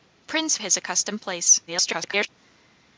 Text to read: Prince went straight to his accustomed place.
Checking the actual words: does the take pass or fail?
fail